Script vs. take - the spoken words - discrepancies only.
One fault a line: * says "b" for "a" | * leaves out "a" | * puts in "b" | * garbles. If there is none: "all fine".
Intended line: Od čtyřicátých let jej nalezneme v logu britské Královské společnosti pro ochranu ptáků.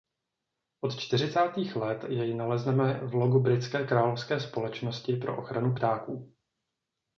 all fine